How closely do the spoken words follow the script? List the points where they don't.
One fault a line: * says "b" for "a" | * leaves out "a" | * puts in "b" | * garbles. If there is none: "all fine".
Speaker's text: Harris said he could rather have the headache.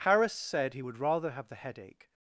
* says "would" for "could"